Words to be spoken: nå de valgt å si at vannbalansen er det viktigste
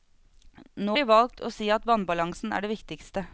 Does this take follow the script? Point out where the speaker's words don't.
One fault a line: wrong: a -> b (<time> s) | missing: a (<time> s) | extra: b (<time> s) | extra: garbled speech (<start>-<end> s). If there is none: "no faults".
no faults